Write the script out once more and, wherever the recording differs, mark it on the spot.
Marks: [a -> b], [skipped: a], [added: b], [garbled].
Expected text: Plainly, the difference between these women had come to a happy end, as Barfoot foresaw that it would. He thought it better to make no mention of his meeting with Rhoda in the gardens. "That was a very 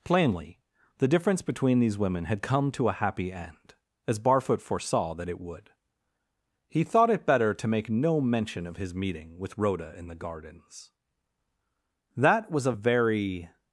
Plainly, the difference between these women had come to a happy end, as Barfoot foresaw that it would. He thought it better to make no mention of his meeting with Rhoda in the gardens. "That was a very